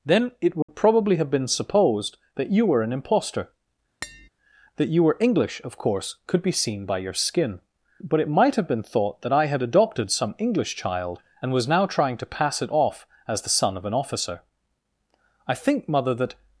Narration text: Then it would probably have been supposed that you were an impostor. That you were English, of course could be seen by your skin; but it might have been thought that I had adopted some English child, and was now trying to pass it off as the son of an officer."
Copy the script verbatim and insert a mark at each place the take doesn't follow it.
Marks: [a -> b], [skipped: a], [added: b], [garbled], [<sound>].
Then it would [dropout] probably have been supposed that you were an impostor. [tap] That you were English, of course could be seen by your skin; but it might have been thought that I had adopted some English child, and was now trying to pass it off as the son of an officer." [added: I think mother that]